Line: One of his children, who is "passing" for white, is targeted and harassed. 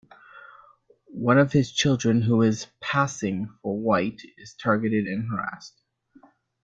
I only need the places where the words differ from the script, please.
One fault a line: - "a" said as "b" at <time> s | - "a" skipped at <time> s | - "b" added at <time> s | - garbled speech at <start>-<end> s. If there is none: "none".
none